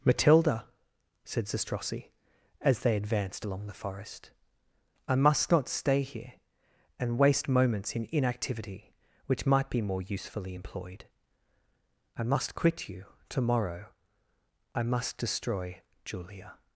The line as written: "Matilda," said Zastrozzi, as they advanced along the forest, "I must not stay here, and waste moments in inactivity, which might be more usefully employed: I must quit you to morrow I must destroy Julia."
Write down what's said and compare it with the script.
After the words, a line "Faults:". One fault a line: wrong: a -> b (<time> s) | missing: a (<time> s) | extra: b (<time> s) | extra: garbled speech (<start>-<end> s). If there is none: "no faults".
"Matilda," said Zastrozzi, as they advanced along the forest, "I must not stay here, and waste moments in inactivity, which might be more usefully employed: I must quit you to morrow I must destroy Julia."
Faults:
no faults